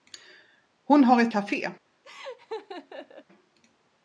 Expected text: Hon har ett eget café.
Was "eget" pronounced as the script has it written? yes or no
no